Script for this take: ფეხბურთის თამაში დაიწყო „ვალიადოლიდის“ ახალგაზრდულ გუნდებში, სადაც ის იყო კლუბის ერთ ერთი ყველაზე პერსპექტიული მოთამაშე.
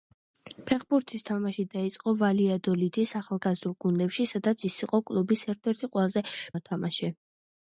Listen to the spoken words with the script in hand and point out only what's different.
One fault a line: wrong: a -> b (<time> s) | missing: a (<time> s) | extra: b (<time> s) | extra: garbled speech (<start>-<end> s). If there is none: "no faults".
missing: პერსპექტიული (6.2 s)